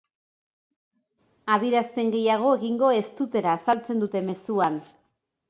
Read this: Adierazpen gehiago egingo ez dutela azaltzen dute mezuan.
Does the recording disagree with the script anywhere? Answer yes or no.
no